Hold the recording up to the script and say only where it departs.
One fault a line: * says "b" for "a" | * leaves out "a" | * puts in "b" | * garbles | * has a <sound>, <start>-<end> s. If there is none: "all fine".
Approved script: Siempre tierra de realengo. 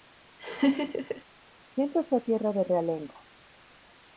* has a laugh, 0.4-1.2 s
* puts in "fue"